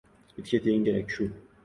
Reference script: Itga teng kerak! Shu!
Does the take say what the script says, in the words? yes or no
yes